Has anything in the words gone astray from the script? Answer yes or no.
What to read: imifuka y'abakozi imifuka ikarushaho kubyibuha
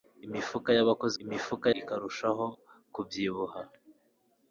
no